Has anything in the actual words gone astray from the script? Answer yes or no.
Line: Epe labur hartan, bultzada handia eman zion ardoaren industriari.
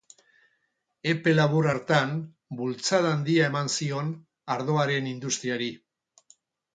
no